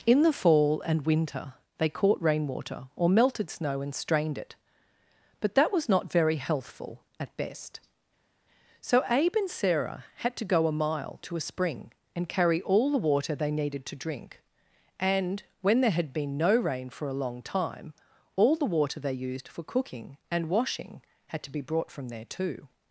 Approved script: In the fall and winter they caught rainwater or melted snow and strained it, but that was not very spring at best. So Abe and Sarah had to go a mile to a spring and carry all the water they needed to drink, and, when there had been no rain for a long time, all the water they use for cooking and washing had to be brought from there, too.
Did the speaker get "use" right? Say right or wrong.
wrong